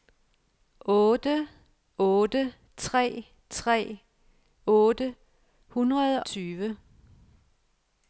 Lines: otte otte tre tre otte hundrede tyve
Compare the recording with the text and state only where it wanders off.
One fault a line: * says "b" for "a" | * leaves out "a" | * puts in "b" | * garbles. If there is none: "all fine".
all fine